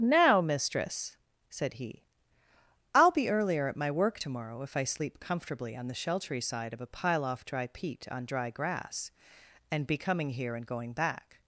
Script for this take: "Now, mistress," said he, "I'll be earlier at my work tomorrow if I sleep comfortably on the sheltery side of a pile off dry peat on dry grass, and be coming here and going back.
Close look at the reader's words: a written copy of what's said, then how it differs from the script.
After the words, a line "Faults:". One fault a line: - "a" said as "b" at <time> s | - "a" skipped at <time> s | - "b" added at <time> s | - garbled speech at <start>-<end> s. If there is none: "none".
"Now, mistress," said he, "I'll be earlier at my work tomorrow if I sleep comfortably on the sheltery side of a pile off dry peat on dry grass, and be coming here and going back.
Faults:
none